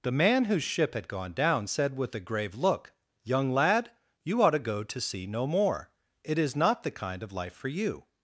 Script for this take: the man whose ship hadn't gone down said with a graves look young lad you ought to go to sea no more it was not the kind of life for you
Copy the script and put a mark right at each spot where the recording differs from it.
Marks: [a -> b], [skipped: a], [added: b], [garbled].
the man whose ship [hadn't -> had] gone down said with a [graves -> grave] look young lad you ought to go to sea no more it [was -> is] not the kind of life for you